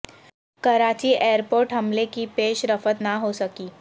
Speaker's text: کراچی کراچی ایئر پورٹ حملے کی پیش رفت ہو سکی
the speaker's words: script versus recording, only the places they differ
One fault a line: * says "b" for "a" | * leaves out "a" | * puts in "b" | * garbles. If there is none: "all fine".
* leaves out "کراچی"
* puts in "نہ"